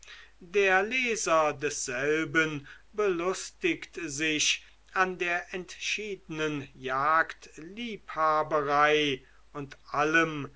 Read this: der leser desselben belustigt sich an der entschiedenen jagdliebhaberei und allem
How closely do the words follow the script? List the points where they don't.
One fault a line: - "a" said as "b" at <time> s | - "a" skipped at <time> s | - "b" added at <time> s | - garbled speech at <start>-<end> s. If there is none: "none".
none